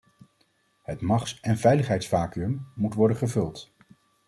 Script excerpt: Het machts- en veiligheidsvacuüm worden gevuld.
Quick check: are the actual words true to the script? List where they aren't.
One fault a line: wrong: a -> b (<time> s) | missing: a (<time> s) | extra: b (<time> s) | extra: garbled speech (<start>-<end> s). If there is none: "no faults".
extra: moet (2.7 s)